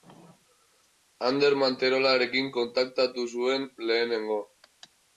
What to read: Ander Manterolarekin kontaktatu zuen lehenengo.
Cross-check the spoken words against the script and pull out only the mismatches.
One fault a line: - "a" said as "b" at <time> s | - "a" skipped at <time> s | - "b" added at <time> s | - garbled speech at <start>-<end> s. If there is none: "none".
none